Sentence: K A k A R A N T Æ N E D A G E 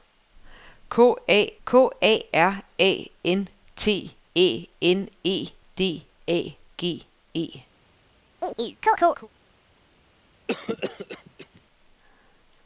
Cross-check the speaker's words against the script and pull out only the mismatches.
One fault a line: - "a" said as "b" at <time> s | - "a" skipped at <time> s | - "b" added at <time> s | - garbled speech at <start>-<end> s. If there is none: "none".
none